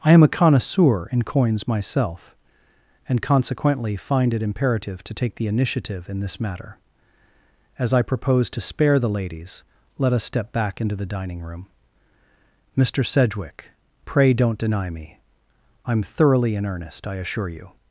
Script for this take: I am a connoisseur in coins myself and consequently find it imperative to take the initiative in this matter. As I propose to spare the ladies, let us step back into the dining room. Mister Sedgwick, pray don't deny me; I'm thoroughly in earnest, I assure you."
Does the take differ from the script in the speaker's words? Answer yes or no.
no